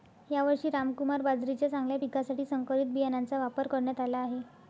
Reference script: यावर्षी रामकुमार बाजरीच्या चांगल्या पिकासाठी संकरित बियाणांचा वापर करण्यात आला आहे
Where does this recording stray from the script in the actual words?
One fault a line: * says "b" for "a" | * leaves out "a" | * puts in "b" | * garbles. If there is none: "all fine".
all fine